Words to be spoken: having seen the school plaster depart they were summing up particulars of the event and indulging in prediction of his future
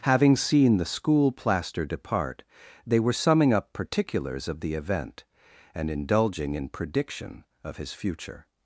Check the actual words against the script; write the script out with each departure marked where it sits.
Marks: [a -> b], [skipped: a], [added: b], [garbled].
having seen the school plaster depart they were summing up particulars of the event and indulging in prediction of his future